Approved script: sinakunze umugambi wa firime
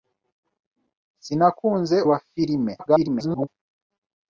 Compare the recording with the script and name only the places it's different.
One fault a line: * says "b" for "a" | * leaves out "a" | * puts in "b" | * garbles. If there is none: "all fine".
* leaves out "umugambi"
* garbles